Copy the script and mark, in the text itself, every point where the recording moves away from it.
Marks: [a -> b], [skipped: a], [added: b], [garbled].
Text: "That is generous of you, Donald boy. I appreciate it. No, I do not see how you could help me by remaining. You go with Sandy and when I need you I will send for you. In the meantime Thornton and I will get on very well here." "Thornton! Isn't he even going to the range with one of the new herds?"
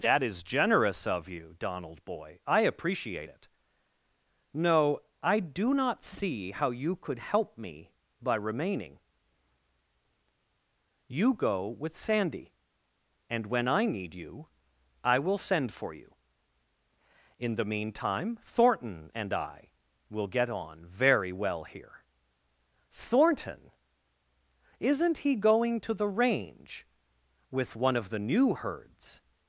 "That is generous of you, Donald boy. I appreciate it. No, I do not see how you could help me by remaining. You go with Sandy and when I need you I will send for you. In the meantime Thornton and I will get on very well here." "Thornton! Isn't he [skipped: even] going to the range with one of the new herds?"